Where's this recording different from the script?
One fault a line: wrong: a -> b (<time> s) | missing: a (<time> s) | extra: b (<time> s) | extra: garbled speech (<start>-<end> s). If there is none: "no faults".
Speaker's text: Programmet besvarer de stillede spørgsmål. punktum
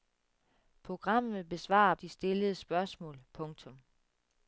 no faults